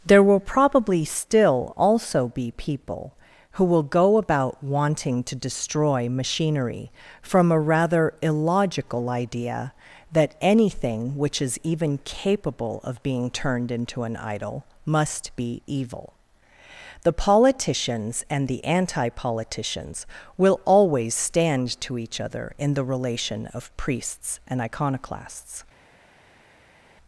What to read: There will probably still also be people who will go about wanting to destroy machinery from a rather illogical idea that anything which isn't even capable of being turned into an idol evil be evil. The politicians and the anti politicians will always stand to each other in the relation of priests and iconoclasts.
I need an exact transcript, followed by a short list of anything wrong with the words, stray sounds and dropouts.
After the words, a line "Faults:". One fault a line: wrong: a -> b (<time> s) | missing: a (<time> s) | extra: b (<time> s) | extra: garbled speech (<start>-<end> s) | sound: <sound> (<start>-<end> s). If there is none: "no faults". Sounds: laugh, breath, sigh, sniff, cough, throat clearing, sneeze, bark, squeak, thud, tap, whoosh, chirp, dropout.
There will probably still also be people who will go about wanting to destroy machinery from a rather illogical idea that anything which is even capable of being turned into an idol must be evil. The politicians and the anti politicians will always stand to each other in the relation of priests and iconoclasts.
Faults:
wrong: isn't -> is (11.4 s)
wrong: evil -> must (14.8 s)